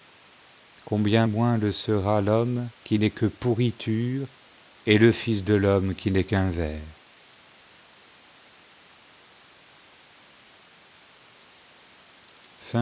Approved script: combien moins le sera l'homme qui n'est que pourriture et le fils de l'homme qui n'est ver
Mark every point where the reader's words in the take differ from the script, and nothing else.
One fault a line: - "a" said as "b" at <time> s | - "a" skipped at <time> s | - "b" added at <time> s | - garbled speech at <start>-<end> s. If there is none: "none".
- "qu'un" added at 6.2 s